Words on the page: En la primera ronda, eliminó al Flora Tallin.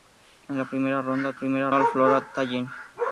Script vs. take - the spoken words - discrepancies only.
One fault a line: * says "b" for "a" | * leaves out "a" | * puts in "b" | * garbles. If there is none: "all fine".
* says "primera" for "eliminó"